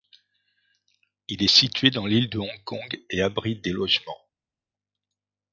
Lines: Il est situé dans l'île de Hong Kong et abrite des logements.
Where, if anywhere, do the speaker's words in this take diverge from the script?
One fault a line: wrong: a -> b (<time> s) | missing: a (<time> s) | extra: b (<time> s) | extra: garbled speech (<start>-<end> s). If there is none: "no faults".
no faults